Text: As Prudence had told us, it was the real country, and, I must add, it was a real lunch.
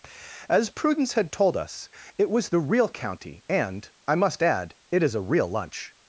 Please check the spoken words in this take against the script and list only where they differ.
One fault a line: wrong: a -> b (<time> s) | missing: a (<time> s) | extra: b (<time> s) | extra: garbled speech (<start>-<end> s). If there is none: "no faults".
wrong: country -> county (2.9 s)
wrong: was -> is (5.0 s)